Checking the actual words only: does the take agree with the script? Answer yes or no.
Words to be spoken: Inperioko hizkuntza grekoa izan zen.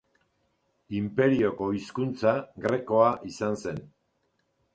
yes